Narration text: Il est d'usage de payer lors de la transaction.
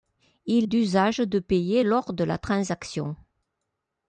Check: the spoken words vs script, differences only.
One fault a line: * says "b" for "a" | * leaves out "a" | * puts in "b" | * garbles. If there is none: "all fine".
* leaves out "est"